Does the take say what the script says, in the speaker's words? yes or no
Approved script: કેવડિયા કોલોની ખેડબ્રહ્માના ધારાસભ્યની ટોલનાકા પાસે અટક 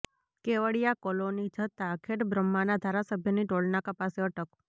no